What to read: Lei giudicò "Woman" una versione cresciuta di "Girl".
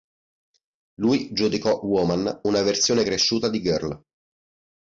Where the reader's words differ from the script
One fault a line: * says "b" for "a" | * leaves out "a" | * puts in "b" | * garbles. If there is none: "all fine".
* says "Lui" for "Lei"